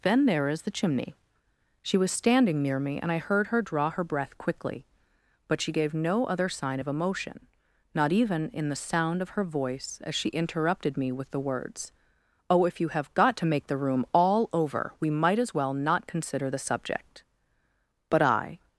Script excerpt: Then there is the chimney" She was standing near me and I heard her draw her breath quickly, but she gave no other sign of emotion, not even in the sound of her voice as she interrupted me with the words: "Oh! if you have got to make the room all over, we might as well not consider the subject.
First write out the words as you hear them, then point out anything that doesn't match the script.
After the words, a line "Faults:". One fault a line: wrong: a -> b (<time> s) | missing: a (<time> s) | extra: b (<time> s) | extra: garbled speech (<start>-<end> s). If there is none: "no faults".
Then there is the chimney" She was standing near me and I heard her draw her breath quickly, but she gave no other sign of emotion, not even in the sound of her voice as she interrupted me with the words: "Oh! if you have got to make the room all over, we might as well not consider the subject. But I
Faults:
extra: But I (18.1 s)